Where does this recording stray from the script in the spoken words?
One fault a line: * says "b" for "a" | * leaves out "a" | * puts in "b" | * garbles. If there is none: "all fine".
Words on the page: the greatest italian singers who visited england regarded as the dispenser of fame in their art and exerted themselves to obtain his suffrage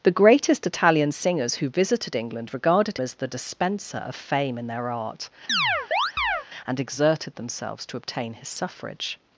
all fine